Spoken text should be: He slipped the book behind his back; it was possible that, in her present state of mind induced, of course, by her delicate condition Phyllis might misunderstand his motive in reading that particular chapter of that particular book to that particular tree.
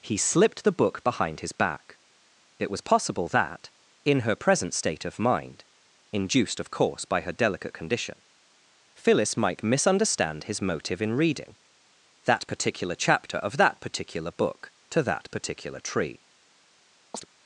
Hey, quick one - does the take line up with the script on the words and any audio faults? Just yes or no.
no